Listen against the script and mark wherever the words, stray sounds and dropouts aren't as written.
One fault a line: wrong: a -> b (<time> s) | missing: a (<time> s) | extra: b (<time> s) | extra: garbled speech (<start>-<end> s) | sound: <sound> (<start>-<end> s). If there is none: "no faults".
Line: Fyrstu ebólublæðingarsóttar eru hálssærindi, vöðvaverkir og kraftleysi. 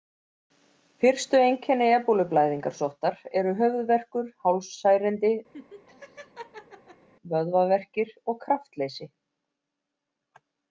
extra: einkenni (1.5 s)
extra: höfuðverkur (3.6 s)
sound: laugh (5.5-7.1 s)